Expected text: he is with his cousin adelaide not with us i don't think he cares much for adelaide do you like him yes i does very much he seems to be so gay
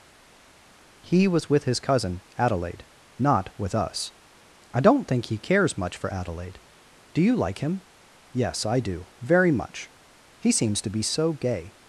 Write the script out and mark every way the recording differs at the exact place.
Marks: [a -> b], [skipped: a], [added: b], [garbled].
he [is -> was] with his cousin adelaide not with us i don't think he cares much for adelaide do you like him yes i [does -> do] very much he seems to be so gay